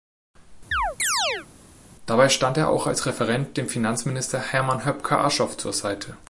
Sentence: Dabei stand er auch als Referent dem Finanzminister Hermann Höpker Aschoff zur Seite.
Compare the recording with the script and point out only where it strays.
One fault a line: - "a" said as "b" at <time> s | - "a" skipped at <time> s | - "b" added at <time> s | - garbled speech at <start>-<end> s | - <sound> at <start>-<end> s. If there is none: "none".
- chirp at 0.7-1.5 s